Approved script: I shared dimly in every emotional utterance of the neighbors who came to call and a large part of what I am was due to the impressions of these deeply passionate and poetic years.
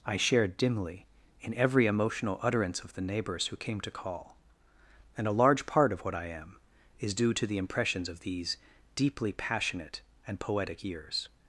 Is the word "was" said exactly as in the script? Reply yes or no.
no